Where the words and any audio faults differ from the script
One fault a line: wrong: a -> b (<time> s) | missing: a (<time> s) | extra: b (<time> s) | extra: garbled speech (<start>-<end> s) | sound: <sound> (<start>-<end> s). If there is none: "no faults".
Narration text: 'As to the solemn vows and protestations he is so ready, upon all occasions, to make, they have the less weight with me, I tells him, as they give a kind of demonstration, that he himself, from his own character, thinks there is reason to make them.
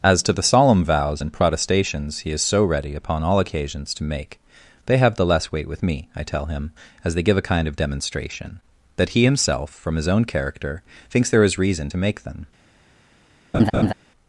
wrong: tells -> tell (6.2 s)
sound: laugh (13.5-13.9 s)